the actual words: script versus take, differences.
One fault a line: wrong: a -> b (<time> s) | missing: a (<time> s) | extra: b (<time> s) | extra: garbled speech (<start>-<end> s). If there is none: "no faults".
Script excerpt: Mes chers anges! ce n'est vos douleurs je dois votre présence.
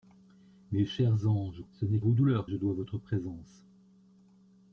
no faults